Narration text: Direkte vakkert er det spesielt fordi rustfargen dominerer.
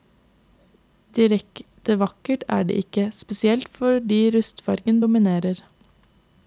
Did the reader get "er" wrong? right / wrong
right